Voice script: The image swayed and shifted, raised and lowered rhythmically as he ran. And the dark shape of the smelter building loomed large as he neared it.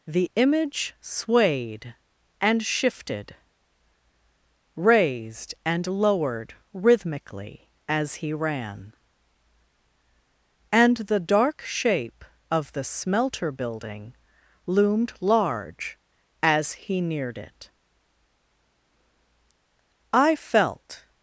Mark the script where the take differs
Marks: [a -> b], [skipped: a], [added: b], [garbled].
The image swayed and shifted, raised and lowered rhythmically as he ran. And the dark shape of the smelter building loomed large as he neared it. [added: I felt]